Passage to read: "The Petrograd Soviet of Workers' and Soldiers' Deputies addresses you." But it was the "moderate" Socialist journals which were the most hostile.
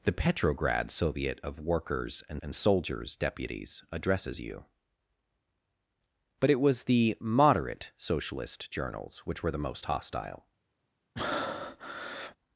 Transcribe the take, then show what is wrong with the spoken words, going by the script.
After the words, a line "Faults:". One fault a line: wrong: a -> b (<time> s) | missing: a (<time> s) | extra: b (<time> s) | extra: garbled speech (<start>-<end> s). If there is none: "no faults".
"The Petrograd Soviet of Workers' and and Soldiers' Deputies addresses you." But it was the "moderate" Socialist journals which were the most hostile.
Faults:
extra: and (2.4 s)